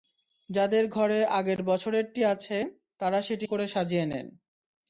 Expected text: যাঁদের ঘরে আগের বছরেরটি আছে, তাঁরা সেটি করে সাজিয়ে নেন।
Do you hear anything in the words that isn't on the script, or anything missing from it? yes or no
no